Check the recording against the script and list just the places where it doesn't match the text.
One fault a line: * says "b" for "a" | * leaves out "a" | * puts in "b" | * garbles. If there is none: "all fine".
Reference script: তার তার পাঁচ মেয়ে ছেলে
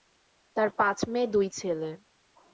* leaves out "তার"
* puts in "দুই"